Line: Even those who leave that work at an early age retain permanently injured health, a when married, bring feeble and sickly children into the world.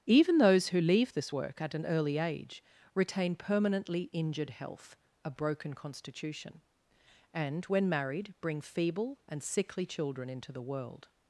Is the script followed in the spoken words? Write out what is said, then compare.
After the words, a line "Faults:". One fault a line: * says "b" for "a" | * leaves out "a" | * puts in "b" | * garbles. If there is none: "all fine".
Even those who leave this work at an early age retain permanently injured health, a broken constitution; and, when married, bring feeble and sickly children into the world.
Faults:
* says "this" for "that"
* puts in "broken constitution and"